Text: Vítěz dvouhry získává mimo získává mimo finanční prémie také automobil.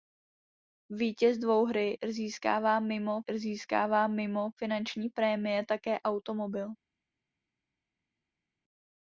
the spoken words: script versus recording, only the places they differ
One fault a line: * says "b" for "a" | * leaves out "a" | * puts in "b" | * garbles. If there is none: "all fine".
all fine